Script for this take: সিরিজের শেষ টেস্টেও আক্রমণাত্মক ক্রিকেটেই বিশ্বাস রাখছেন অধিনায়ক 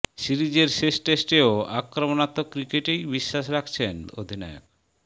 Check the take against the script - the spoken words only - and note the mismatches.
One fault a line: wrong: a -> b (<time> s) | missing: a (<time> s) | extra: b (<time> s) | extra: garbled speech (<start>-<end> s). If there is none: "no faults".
no faults